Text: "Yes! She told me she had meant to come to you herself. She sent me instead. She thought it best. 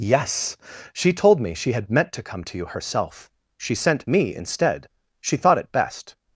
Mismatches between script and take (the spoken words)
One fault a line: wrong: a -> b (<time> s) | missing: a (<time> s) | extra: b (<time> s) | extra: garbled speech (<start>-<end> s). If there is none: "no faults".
no faults